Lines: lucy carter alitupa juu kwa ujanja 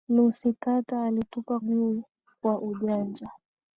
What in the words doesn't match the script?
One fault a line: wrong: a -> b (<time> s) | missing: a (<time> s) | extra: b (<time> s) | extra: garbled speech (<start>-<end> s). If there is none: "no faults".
no faults